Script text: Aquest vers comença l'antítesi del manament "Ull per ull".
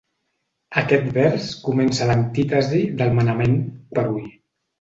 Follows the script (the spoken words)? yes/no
no